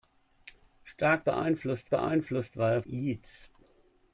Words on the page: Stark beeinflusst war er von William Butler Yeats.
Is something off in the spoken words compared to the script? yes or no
yes